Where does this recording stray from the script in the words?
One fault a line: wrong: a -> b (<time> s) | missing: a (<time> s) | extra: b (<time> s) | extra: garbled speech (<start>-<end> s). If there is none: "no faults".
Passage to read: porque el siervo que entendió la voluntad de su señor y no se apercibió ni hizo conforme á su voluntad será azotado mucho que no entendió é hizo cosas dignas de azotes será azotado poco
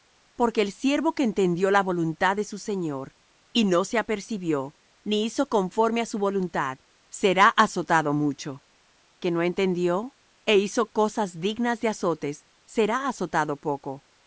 no faults